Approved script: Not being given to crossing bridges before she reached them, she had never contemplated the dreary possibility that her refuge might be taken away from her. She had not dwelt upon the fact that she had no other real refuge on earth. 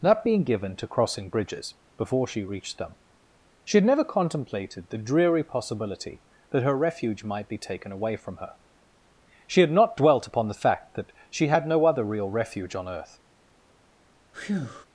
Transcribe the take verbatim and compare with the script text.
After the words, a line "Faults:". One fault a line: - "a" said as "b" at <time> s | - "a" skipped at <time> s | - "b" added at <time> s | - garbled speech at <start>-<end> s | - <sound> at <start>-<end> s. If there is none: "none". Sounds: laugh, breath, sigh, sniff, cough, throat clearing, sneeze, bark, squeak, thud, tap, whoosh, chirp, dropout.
Not being given to crossing bridges before she reached them, she had never contemplated the dreary possibility that her refuge might be taken away from her. She had not dwelt upon the fact that she had no other real refuge on earth.
Faults:
- breath at 14.3-14.9 s